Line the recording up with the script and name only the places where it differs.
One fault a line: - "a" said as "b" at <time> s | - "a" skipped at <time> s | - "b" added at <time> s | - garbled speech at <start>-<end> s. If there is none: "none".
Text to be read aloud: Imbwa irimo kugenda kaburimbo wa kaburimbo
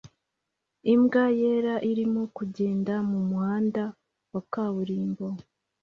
- "yera" added at 1.4 s
- "kaburimbo" said as "mumuhanda" at 3.1 s